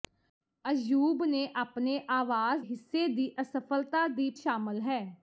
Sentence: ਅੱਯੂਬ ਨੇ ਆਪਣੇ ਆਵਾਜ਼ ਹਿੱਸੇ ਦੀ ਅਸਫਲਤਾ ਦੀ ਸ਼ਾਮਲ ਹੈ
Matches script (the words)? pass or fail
pass